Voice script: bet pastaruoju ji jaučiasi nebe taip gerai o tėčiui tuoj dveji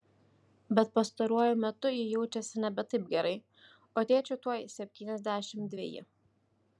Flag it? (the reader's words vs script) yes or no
yes